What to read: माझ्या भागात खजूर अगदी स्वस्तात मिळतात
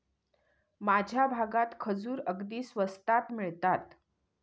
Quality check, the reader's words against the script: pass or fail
pass